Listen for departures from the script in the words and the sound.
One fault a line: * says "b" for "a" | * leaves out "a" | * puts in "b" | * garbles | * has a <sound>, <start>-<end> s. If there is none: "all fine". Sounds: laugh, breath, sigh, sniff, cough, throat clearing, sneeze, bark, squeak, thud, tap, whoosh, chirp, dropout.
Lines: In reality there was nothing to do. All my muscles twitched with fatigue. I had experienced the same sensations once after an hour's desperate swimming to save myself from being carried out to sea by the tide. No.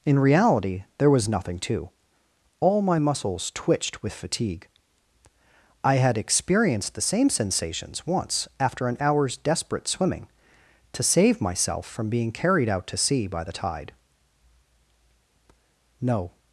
* leaves out "do"